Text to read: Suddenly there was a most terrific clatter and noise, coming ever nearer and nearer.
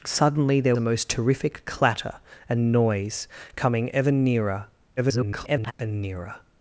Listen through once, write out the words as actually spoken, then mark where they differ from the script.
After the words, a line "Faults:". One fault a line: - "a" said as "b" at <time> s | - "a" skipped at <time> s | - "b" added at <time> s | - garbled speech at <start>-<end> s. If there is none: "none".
Suddenly there a most terrific clatter and noise, coming ever nearer [garbled] and nearer.
Faults:
- "was" skipped at 0.8 s
- garbled speech at 5.0-5.7 s